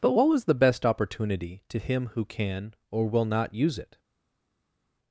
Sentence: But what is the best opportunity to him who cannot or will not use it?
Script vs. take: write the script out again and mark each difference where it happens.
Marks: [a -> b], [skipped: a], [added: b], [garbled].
But what [is -> was] the best opportunity to him who [cannot -> can] or will not use it?